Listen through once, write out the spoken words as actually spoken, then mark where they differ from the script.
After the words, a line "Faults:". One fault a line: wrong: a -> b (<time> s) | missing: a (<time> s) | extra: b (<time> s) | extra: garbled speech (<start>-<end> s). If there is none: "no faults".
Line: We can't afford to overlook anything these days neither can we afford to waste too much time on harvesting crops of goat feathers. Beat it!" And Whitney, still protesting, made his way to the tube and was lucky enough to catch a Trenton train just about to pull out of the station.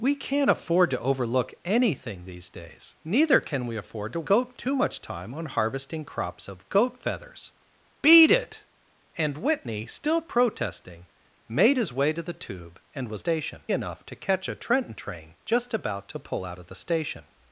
We can't afford to overlook anything these days neither can we afford to goat too much time on harvesting crops of goat feathers. Beat it!" And Whitney, still protesting, made his way to the tube and was station enough to catch a Trenton train just about to pull out of the station.
Faults:
wrong: waste -> goat (4.2 s)
wrong: lucky -> station (13.2 s)